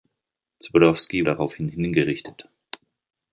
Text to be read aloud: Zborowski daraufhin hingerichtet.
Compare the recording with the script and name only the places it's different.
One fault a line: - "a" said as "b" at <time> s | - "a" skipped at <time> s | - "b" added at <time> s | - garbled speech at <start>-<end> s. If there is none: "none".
none